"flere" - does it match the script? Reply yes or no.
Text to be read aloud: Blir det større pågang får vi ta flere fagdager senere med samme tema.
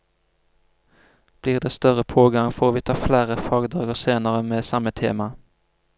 yes